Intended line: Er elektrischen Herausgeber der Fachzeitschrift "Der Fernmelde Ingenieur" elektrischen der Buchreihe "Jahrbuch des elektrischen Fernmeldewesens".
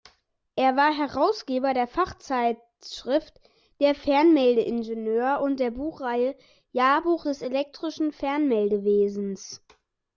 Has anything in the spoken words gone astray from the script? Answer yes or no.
yes